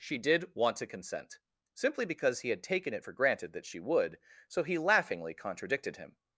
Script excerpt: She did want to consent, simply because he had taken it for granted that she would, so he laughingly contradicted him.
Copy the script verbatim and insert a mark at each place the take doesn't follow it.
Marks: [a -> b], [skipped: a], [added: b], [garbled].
She did want to consent, simply because he had taken it for granted that she would, so he laughingly contradicted him.